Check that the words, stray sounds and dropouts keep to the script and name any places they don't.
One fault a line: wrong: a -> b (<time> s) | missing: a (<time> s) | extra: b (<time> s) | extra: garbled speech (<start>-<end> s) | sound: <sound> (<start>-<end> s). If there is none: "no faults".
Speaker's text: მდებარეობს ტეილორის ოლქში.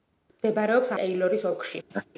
sound: laugh (1.9-2.1 s)